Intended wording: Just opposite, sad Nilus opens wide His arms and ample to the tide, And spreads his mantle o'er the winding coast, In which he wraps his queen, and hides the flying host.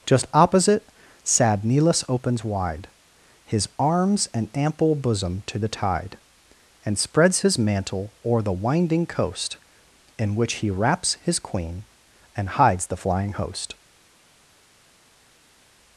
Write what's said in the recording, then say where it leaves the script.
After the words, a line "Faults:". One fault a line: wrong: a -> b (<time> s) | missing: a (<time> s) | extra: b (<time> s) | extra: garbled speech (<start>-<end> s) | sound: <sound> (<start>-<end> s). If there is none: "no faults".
Just opposite, sad Nilus opens wide His arms and ample bosom to the tide, And spreads his mantle o'er the winding coast, In which he wraps his queen, and hides the flying host.
Faults:
extra: bosom (5.0 s)